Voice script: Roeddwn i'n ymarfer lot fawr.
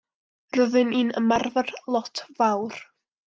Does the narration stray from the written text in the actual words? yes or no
no